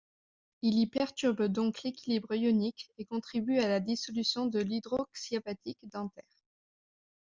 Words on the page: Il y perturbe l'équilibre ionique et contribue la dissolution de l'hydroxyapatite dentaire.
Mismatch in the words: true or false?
true